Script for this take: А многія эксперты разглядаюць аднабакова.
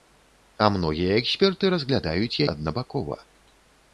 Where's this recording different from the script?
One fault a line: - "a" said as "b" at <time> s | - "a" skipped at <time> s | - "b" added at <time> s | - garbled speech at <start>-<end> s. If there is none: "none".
none